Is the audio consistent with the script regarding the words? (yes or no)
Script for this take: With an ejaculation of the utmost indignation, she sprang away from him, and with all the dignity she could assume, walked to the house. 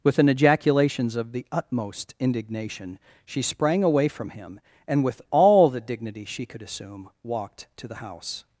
no